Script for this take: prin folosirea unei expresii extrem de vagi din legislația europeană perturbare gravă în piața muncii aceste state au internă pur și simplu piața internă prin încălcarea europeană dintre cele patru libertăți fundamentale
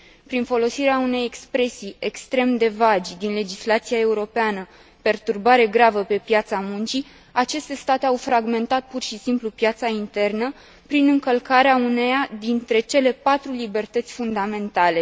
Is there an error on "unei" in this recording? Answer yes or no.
no